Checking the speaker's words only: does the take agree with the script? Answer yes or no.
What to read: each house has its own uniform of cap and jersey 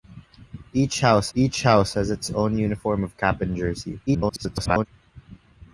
no